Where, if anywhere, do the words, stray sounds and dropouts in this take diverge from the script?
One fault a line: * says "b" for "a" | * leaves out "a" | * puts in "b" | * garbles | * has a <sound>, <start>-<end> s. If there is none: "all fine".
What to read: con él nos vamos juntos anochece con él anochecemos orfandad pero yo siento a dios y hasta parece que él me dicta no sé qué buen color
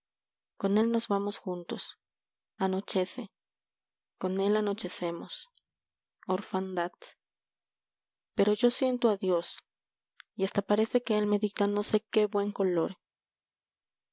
all fine